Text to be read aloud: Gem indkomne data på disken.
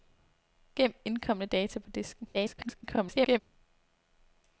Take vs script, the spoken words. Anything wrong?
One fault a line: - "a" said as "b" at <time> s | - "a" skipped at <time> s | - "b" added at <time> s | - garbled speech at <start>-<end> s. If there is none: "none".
- garbled speech at 2.3-3.4 s